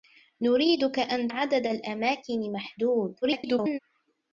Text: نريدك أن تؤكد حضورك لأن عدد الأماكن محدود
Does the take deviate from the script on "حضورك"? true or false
true